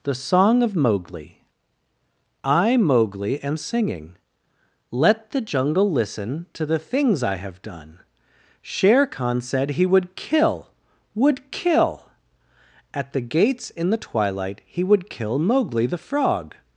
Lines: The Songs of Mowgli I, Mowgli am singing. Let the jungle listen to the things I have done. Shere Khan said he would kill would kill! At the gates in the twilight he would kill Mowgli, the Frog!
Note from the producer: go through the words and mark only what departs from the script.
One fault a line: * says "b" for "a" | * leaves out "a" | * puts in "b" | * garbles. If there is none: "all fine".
* says "Song" for "Songs"